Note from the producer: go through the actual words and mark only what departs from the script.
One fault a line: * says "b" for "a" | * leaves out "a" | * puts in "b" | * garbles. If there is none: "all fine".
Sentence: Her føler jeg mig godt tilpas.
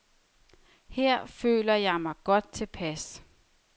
all fine